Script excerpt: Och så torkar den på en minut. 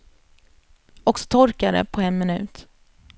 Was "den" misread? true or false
true